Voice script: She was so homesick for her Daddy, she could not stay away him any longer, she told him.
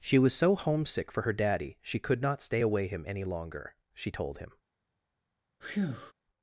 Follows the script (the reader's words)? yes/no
yes